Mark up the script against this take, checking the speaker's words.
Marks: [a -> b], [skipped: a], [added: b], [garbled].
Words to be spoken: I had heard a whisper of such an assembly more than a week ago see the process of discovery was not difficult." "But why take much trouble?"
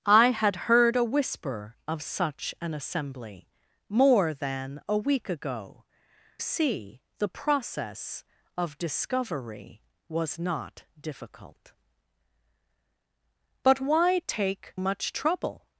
I had heard a whisper of such an assembly more than a week ago see the process of discovery was not difficult." "But why take much trouble?"